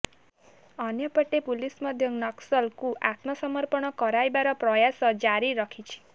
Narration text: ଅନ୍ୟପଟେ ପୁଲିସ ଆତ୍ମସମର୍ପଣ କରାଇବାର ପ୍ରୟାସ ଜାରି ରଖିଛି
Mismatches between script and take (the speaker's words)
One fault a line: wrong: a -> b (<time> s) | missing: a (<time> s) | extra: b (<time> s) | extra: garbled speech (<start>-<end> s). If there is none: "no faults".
extra: ମଧ୍ୟ ନକ୍ସଲଙ୍କୁ (1.9 s)